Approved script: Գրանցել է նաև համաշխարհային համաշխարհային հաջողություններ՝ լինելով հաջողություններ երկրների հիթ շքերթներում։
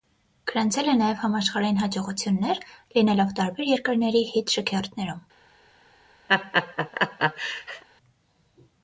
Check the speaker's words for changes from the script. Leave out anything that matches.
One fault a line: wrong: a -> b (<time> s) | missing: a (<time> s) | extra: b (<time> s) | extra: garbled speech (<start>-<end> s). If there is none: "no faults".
missing: համաշխարհային (1.8 s)
wrong: հաջողություններ -> տարբեր (3.4 s)